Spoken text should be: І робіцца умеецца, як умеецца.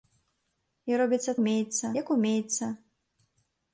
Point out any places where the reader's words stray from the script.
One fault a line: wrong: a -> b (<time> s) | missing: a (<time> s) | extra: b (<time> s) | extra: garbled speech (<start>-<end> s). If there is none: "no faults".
no faults